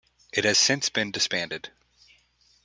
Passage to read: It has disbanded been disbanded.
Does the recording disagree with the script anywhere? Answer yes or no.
yes